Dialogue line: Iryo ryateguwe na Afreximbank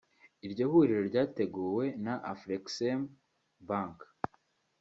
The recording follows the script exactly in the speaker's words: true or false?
false